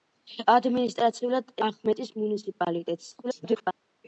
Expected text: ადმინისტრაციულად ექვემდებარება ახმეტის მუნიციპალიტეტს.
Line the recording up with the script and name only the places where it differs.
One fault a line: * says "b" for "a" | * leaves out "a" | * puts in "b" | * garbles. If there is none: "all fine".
* leaves out "ექვემდებარება"
* garbles